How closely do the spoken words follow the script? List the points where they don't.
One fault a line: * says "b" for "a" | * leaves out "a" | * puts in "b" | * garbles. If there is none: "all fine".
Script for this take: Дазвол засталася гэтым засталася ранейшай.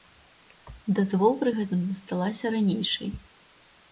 * says "пры" for "засталася"